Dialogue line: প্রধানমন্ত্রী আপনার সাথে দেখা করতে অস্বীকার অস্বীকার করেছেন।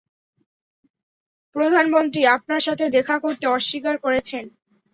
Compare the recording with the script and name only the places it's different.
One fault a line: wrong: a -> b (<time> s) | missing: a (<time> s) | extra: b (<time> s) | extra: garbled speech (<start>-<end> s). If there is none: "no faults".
missing: অস্বীকার (4.0 s)